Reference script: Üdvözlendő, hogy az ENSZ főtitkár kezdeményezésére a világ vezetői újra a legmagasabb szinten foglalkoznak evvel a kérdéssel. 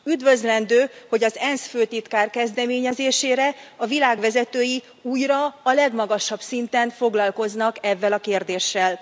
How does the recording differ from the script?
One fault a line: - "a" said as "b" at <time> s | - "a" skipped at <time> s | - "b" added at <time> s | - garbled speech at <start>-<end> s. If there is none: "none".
none